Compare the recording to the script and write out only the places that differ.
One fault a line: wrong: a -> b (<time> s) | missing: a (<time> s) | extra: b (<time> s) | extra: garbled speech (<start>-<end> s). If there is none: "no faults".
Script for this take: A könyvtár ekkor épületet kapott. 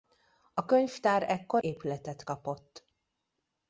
no faults